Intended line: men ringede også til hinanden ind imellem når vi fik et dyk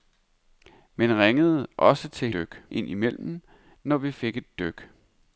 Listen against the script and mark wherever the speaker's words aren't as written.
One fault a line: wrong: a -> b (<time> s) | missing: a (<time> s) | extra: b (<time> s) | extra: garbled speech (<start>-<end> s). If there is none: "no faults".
wrong: hinanden -> dyk (2.3 s)